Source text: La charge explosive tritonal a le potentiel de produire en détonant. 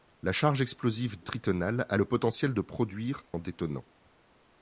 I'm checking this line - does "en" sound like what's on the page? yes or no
yes